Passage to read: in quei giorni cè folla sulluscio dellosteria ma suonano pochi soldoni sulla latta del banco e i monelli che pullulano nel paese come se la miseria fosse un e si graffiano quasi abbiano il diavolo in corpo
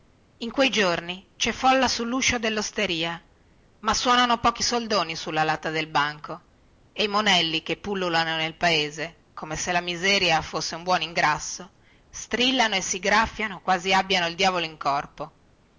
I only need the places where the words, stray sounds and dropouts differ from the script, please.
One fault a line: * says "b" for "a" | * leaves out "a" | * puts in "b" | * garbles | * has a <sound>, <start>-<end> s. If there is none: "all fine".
* puts in "buon ingrasso strillano"